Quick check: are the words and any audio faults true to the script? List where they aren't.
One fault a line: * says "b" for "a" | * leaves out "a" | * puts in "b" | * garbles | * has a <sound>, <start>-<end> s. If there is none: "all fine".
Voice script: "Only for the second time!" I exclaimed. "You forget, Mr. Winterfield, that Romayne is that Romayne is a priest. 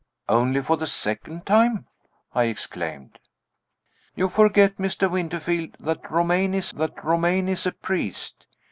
all fine